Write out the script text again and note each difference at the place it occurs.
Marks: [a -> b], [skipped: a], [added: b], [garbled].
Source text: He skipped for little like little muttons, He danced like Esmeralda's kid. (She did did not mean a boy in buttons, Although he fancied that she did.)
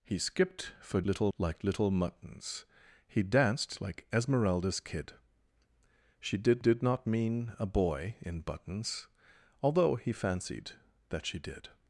He skipped for little like little muttons, He danced like Esmeralda's kid. (She did did not mean a boy in buttons, Although he fancied that she did.)